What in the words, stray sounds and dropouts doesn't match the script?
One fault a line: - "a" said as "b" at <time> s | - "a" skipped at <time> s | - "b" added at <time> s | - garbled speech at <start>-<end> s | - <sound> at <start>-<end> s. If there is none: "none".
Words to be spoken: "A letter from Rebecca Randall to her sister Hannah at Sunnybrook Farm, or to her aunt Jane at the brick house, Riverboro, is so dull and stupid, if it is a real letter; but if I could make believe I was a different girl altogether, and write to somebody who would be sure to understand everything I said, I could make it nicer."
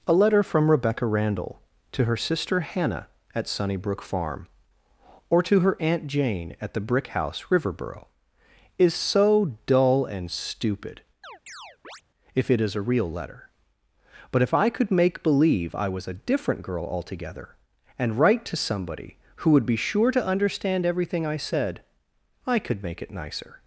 - chirp at 11.2-12.0 s